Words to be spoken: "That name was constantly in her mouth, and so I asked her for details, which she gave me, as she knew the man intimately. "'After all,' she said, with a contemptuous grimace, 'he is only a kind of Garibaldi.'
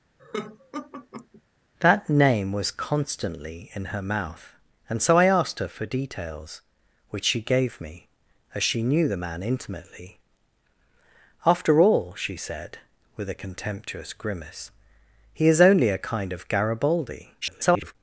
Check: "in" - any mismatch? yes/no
no